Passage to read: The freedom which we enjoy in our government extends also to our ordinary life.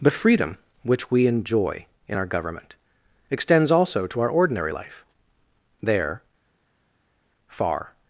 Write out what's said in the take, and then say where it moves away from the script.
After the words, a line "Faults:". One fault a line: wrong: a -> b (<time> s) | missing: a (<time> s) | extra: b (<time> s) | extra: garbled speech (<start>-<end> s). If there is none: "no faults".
The freedom which we enjoy in our government extends also to our ordinary life. There, far
Faults:
extra: There far (5.8 s)